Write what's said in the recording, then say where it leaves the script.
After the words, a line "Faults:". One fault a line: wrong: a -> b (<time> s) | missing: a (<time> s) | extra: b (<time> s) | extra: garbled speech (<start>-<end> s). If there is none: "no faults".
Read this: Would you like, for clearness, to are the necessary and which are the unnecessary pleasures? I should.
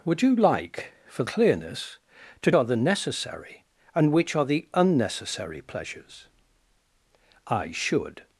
Would you like, for clearness, to are the necessary and which are the unnecessary pleasures? I should.
Faults:
no faults